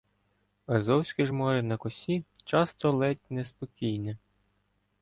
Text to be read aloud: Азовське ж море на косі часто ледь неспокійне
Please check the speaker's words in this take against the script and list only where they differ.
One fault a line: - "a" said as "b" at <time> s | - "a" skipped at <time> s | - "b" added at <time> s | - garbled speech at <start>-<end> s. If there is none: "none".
none